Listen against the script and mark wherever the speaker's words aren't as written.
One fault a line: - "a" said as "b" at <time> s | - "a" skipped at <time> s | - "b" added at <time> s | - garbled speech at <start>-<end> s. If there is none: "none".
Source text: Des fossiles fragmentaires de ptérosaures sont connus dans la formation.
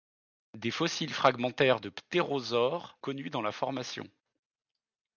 - "sont" skipped at 3.0 s